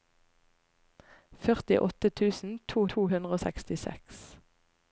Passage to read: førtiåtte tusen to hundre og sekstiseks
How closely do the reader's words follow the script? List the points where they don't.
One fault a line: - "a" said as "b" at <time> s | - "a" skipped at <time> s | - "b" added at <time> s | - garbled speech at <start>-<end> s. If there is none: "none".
- "to" added at 3.0 s